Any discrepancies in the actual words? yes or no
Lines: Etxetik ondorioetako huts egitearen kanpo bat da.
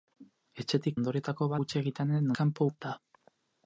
no